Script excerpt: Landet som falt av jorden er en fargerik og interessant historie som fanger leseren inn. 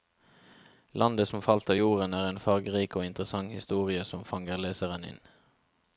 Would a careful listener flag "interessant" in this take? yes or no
no